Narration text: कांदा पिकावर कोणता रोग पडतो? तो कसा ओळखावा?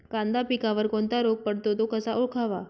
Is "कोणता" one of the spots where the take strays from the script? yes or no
no